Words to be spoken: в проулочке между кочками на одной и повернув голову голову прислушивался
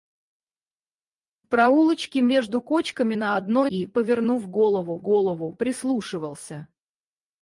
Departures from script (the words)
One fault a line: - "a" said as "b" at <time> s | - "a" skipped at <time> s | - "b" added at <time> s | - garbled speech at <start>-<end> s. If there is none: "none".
none